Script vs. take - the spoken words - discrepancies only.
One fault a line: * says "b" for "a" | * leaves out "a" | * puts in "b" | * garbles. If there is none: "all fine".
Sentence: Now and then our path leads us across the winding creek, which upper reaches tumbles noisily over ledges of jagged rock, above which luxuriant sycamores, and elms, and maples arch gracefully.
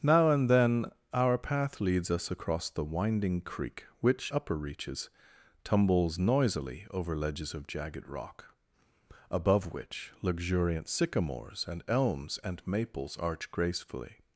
all fine